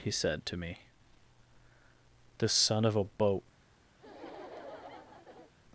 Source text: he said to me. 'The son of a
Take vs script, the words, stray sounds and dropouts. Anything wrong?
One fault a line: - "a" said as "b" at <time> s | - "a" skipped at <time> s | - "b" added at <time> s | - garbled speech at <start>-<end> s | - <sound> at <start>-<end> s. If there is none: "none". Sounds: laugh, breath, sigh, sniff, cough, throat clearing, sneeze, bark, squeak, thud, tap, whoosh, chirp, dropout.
- "boat" added at 3.0 s
- laugh at 4.0-5.5 s